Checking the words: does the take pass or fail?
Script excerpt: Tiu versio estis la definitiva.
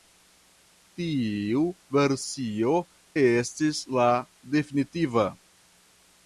pass